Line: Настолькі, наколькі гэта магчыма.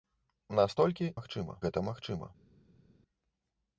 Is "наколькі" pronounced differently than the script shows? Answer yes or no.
yes